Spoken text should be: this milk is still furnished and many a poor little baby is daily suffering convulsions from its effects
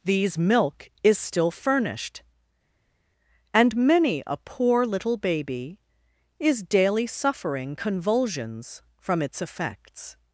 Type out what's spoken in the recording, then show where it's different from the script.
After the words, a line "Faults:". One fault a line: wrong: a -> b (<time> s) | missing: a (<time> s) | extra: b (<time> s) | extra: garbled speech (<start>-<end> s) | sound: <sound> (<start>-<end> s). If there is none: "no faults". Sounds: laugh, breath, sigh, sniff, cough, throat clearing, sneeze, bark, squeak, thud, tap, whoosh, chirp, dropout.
these milk is still furnished and many a poor little baby is daily suffering convulsions from its effects
Faults:
wrong: this -> these (0.0 s)